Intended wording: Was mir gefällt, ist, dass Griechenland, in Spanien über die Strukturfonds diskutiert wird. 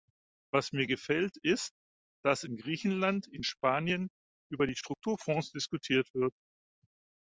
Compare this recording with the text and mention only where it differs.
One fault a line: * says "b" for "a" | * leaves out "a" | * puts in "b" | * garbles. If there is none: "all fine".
* puts in "in"